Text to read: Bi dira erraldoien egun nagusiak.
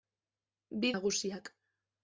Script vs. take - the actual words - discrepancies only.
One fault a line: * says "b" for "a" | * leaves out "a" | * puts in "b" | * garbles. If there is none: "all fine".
* leaves out "dira erraldoien egun"